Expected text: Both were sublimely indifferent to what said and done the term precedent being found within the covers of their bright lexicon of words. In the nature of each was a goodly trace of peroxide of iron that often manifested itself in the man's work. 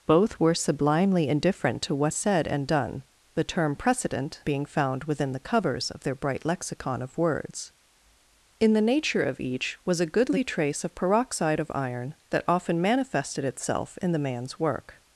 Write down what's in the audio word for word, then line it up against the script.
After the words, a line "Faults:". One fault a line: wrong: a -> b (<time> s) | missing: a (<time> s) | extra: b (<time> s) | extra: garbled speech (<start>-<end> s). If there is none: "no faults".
Both were sublimely indifferent to what said and done the term precedent being found within the covers of their bright lexicon of words. In the nature of each was a goodly trace of peroxide of iron that often manifested itself in the man's work.
Faults:
no faults